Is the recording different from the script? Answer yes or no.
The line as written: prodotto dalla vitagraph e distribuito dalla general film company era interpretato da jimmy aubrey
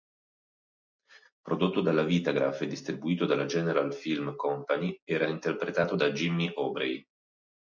no